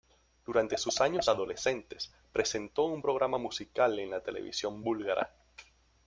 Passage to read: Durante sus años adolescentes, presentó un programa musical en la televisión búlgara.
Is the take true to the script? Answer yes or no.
yes